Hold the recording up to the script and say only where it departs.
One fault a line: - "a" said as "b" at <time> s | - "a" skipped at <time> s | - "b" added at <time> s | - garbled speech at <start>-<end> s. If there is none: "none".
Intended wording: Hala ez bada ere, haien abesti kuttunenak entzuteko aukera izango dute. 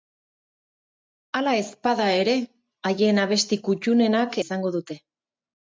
- "entzuteko aukera" skipped at 4.4 s